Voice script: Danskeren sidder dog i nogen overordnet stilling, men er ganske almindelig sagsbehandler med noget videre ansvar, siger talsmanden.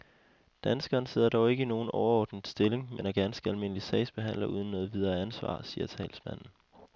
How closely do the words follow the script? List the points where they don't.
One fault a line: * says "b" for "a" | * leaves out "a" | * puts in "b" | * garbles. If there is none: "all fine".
* puts in "ikke"
* says "uden" for "med"